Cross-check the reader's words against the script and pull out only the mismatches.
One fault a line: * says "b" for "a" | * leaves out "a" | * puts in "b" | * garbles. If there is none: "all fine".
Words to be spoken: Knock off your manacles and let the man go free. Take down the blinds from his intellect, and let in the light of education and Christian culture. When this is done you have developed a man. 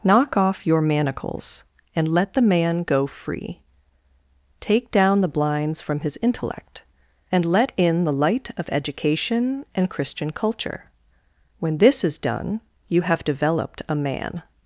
all fine